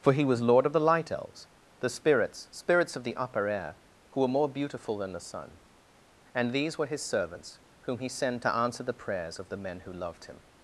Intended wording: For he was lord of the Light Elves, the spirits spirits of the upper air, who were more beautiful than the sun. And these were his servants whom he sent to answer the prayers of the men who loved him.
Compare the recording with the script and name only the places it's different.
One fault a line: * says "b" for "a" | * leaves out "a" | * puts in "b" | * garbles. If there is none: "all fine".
all fine